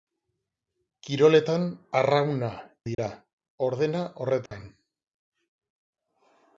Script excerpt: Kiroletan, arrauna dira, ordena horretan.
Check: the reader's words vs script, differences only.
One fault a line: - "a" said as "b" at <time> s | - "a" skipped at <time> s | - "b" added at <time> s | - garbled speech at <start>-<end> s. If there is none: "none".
none